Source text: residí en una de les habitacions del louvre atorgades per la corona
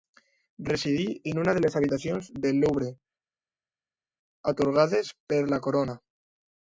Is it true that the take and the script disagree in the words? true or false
false